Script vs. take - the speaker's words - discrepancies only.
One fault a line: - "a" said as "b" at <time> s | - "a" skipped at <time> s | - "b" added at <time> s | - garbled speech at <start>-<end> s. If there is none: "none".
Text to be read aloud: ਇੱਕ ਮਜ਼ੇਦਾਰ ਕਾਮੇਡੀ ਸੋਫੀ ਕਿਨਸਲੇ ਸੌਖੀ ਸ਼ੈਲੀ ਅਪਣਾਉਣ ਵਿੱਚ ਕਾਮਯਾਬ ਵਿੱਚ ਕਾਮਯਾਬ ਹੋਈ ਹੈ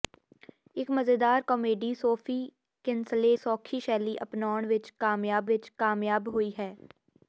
none